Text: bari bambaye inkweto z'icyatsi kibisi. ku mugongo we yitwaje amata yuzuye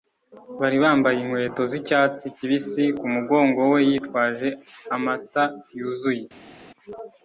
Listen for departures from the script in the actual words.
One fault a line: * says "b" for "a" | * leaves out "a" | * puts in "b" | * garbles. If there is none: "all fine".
all fine